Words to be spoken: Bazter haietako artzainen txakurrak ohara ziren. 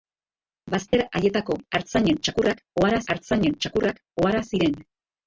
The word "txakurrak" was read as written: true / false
true